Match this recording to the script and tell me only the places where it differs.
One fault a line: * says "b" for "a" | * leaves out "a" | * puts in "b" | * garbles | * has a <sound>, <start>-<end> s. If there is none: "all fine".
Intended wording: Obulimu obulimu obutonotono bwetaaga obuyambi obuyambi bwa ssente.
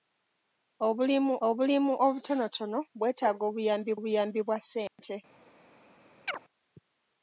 * has a dropout, 4.9-5.0 s
* has a chirp, 6.3-6.4 s